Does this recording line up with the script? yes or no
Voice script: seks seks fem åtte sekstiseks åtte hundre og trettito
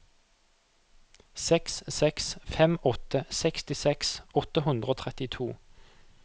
yes